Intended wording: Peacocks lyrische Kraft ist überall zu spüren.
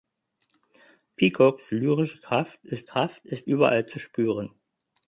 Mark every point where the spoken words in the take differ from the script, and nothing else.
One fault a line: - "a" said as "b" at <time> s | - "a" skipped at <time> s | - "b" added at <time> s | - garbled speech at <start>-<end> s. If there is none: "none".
- "Kraft ist" added at 2.9 s